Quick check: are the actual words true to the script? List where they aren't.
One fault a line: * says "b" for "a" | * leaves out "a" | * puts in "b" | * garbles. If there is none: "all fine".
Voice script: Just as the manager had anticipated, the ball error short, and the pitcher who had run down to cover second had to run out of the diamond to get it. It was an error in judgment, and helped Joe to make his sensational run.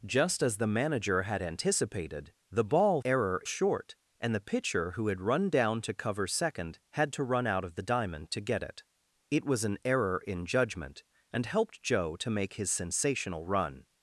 all fine